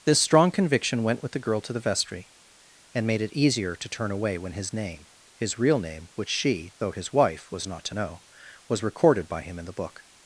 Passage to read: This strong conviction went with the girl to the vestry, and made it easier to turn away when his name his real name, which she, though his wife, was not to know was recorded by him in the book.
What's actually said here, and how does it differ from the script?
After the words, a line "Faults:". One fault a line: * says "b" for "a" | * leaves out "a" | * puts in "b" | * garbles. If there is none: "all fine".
This strong conviction went with the girl to the vestry, and made it easier to turn away when his name his real name, which she, though his wife, was not to know was recorded by him in the book.
Faults:
all fine